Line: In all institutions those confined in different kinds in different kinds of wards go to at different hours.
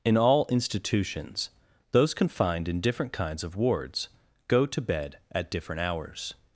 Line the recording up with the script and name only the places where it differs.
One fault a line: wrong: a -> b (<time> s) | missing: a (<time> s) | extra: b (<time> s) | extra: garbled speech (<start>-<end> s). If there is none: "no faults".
missing: in different kinds (3.4 s)
extra: bed (4.8 s)